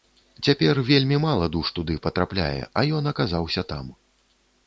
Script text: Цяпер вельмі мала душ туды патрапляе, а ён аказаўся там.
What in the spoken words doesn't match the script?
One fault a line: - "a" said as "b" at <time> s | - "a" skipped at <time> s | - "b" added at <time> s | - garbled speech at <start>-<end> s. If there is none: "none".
none